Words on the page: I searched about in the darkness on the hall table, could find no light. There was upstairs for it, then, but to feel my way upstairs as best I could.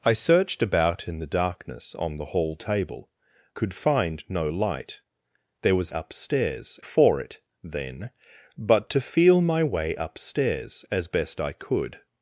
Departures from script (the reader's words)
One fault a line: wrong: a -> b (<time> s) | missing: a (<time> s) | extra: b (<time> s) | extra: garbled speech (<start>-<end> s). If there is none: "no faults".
no faults